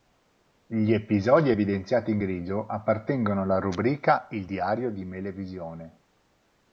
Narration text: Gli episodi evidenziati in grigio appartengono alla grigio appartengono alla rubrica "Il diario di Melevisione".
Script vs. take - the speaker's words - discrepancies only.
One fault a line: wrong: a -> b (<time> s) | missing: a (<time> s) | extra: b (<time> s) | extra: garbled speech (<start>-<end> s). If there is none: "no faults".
missing: grigio appartengono alla (3.6 s)